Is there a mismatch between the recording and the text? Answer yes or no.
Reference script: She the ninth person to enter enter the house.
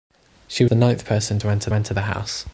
no